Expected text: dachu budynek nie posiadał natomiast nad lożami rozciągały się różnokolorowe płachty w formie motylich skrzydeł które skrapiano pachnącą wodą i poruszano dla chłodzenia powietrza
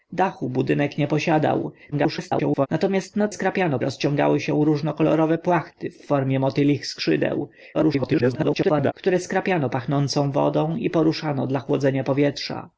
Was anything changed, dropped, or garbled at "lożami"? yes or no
yes